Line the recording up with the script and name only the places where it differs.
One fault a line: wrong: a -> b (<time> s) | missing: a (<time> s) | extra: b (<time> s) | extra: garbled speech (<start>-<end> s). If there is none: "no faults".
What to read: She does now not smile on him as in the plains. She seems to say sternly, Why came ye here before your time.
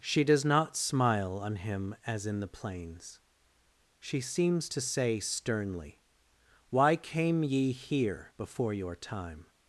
missing: now (0.4 s)